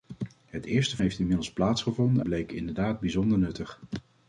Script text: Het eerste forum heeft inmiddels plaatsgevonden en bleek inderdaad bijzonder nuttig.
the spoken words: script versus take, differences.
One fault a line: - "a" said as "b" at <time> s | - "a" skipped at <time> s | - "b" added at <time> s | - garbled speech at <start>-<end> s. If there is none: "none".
- "forum" skipped at 1.0 s
- "en" skipped at 2.2 s